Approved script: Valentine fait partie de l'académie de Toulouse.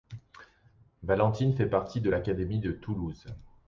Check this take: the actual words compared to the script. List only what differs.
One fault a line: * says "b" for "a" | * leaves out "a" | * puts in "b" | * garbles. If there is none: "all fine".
all fine